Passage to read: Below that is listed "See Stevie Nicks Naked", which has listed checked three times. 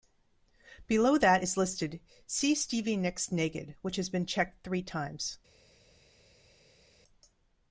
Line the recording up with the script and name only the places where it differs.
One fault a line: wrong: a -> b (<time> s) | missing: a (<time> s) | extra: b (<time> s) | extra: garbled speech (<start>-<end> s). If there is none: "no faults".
wrong: listed -> been (4.1 s)